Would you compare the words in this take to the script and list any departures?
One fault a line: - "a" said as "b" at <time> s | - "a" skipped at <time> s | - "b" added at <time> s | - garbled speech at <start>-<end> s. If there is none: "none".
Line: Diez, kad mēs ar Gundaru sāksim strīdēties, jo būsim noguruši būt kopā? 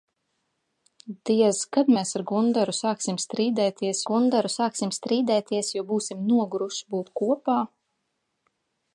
- "Gundaru sāksim strīdēties" added at 4.1 s